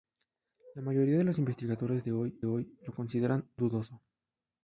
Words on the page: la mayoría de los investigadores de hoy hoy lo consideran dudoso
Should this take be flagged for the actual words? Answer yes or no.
no